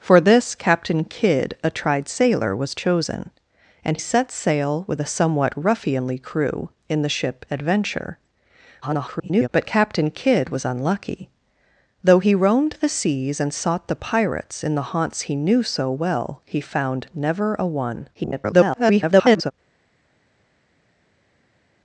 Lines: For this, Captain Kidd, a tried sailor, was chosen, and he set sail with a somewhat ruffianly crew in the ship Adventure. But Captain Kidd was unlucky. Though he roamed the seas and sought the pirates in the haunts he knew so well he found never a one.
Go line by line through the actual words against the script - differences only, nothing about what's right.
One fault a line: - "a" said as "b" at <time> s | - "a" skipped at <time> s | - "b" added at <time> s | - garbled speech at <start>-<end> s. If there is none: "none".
- "he" skipped at 4.0 s
- garbled speech at 8.8-9.5 s
- garbled speech at 18.1-19.5 s